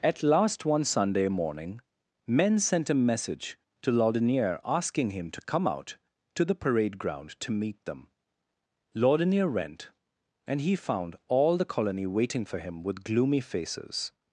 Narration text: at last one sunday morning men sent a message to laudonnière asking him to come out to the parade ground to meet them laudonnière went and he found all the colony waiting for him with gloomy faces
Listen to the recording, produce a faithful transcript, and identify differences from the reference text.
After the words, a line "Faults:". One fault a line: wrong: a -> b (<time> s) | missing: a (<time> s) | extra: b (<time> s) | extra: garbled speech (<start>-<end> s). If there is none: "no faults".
at last one sunday morning men sent a message to laudonnière asking him to come out to the parade ground to meet them laudonnière went and he found all the colony waiting for him with gloomy faces
Faults:
no faults